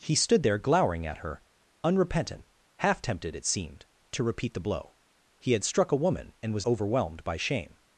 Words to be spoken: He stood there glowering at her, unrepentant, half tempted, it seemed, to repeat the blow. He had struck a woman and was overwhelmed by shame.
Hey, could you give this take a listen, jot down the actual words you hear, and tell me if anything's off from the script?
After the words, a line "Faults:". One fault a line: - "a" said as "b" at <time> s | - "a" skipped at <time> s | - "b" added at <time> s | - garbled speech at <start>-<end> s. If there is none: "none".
He stood there glowering at her, unrepentant, half tempted, it seemed, to repeat the blow. He had struck a woman and was overwhelmed by shame.
Faults:
none